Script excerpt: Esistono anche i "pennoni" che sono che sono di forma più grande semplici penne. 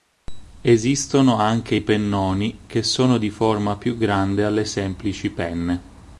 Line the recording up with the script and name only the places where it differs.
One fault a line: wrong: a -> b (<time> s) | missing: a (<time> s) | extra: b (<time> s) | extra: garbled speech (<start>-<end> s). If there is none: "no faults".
missing: che sono (3.2 s)
extra: alle (4.4 s)